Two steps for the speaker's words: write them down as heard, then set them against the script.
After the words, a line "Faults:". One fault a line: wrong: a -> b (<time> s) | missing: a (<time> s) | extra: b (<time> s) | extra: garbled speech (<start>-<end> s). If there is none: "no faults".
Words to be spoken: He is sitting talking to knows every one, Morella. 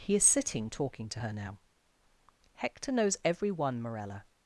He is sitting talking to her now." "Hector knows every one, Morella.
Faults:
extra: her now Hector (1.2 s)